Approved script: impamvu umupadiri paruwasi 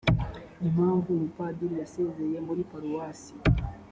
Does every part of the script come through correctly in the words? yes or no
no